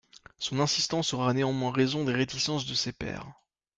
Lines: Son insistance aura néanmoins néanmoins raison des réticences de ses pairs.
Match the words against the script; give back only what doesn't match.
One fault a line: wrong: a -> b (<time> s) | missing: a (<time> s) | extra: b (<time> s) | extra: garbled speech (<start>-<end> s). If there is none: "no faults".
missing: néanmoins (1.7 s)